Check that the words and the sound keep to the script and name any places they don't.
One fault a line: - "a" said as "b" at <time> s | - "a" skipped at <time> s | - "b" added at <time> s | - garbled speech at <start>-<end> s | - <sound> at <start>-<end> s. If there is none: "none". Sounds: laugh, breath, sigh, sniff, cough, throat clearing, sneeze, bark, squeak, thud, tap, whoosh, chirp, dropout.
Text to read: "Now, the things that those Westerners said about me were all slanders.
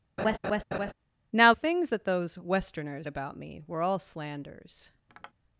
- laugh at 0.2-0.9 s
- "the" skipped at 1.5 s
- "said" skipped at 3.1 s
- tap at 5.1-5.3 s